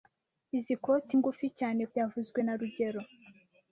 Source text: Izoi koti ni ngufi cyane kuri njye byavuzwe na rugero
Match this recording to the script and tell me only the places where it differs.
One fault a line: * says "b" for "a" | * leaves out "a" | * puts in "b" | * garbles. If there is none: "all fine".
* leaves out "ni"
* leaves out "kuri njye"